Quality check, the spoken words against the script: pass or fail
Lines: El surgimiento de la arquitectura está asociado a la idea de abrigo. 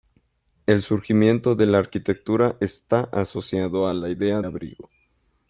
fail